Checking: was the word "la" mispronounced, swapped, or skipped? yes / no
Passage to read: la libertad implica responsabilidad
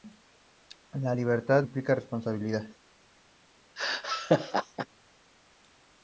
no